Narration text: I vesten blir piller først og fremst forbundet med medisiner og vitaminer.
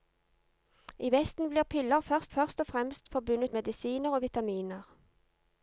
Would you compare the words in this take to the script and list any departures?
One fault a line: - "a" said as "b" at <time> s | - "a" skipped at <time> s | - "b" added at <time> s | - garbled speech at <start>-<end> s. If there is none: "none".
- "først" added at 2.3 s
- "med" skipped at 3.5 s